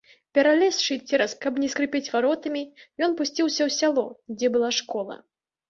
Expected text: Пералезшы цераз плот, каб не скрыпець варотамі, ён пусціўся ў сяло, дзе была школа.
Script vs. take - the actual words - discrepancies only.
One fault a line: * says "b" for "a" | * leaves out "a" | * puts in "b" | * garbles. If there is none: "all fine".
* leaves out "плот"